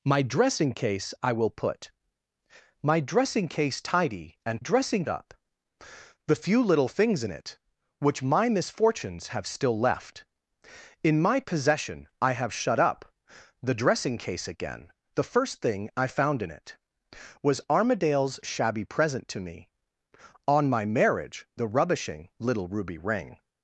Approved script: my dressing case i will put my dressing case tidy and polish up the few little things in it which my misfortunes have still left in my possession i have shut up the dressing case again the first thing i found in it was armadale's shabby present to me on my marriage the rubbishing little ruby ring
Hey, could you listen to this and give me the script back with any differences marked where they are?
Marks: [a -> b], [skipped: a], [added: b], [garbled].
my dressing case i will put my dressing case tidy and [polish -> dressing] up the few little things in it which my misfortunes have still left in my possession i have shut up the dressing case again the first thing i found in it was armadale's shabby present to me on my marriage the rubbishing little ruby ring